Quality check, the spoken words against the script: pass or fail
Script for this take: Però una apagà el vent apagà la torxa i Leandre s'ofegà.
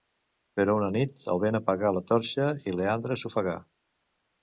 fail